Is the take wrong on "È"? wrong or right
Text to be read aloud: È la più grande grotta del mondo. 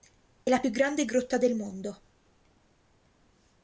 right